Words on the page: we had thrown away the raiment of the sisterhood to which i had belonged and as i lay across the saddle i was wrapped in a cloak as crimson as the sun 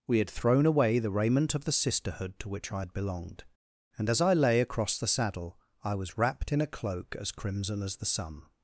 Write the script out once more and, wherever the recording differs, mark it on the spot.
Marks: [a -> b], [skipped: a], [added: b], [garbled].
we had thrown away the raiment of the sisterhood to which i had belonged and as i lay across the saddle i was wrapped in a cloak as crimson as the sun